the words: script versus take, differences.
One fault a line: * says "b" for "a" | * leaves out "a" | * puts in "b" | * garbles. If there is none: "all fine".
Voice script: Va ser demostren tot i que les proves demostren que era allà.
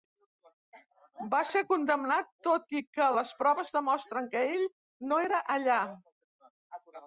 * says "condemnat" for "demostren"
* puts in "ell no"